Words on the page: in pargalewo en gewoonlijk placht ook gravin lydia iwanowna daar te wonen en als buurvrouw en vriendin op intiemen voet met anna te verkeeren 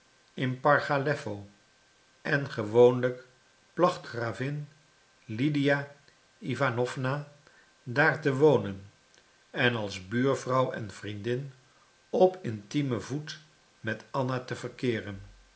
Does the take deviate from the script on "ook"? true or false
true